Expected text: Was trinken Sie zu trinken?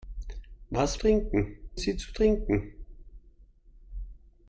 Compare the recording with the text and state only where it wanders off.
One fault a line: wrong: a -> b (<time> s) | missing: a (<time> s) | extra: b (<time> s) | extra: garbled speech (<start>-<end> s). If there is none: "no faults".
no faults